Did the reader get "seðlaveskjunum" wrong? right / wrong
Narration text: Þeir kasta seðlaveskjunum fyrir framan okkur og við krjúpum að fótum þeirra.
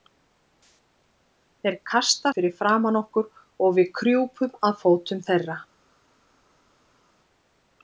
wrong